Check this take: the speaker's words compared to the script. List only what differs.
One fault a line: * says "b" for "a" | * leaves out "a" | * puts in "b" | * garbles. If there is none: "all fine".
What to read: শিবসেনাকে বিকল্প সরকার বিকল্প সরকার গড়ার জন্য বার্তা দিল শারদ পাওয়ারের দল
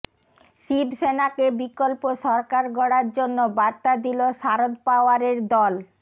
* leaves out "বিকল্প সরকার"